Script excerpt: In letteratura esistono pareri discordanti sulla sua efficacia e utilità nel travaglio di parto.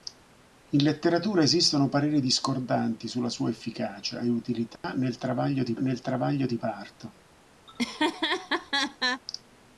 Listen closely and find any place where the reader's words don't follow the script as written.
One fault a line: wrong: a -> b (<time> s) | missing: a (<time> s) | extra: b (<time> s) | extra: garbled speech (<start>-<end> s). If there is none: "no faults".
extra: nel travaglio di (5.8 s)